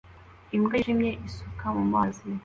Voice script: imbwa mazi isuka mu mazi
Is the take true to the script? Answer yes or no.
no